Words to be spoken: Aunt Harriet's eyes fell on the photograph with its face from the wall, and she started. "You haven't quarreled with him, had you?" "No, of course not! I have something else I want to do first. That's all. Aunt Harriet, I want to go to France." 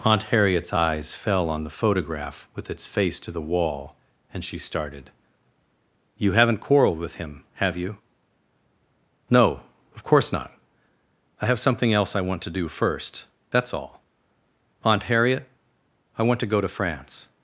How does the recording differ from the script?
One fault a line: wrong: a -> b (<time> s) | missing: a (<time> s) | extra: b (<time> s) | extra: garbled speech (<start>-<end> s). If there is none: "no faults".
wrong: from -> to (3.2 s)
wrong: had -> have (7.6 s)